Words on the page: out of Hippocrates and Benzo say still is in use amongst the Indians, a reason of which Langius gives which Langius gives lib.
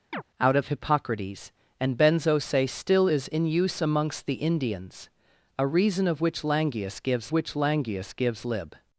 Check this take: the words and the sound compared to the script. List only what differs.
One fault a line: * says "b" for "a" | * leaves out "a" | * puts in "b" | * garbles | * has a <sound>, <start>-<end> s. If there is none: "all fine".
* has a chirp, 0.1-0.2 s